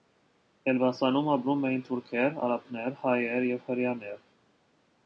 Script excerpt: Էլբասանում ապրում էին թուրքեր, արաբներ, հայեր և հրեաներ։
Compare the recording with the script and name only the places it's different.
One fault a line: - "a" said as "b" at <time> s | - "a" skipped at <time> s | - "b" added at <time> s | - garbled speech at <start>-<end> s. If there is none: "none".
none